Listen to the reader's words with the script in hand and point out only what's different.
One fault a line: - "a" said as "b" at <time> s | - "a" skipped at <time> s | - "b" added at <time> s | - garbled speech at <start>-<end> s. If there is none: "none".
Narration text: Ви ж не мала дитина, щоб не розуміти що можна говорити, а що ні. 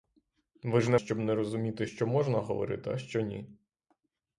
- "мала дитина" skipped at 1.0 s